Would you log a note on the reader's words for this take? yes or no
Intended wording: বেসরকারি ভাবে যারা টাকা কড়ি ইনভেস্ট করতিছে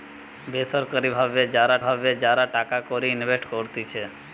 yes